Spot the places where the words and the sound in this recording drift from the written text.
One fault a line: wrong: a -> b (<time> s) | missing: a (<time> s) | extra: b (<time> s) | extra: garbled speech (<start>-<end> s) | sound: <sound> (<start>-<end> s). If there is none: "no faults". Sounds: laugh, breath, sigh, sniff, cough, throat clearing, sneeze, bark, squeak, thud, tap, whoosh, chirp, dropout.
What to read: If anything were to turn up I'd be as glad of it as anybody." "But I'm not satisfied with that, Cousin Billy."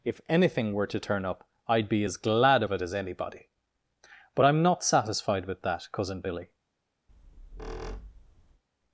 sound: squeak (7.1-8.6 s)